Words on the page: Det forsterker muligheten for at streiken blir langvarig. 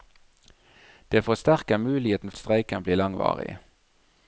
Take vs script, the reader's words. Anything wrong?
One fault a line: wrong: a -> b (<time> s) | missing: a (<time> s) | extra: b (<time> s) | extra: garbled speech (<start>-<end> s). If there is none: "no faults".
missing: for (2.3 s)